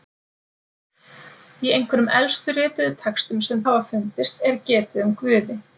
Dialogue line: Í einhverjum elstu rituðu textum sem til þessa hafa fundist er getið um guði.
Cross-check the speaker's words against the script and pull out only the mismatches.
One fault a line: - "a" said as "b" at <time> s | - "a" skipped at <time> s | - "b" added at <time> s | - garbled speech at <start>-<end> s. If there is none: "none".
- "til þessa" skipped at 3.6 s